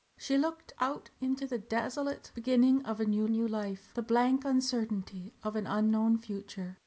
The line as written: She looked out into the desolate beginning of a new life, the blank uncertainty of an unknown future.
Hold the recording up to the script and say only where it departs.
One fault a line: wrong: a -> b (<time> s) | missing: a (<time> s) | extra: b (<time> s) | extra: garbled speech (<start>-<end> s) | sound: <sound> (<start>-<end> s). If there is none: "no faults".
extra: new (3.3 s)